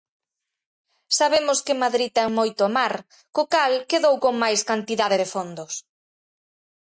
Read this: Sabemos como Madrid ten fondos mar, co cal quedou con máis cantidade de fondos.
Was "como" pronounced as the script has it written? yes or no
no